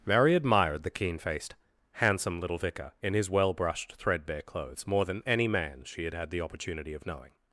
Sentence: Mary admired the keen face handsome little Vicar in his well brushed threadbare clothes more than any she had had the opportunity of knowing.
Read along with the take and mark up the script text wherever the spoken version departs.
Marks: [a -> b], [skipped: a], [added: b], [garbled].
Mary admired the keen [face -> faced] handsome little Vicar in his well brushed threadbare clothes more than any [added: man] she had had the opportunity of knowing.